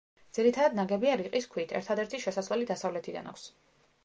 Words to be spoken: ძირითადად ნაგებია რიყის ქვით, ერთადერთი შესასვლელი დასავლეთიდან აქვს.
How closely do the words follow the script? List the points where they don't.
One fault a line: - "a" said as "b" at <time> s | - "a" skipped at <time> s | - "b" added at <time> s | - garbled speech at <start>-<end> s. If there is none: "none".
none